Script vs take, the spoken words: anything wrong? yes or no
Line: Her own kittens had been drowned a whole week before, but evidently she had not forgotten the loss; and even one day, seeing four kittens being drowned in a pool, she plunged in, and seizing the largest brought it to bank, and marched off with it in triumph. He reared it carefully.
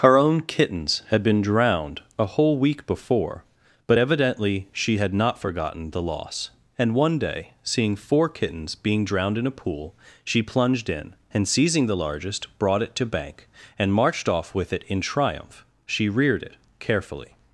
yes